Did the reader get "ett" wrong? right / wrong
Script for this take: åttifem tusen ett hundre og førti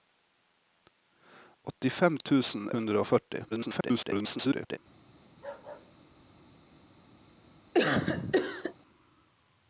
wrong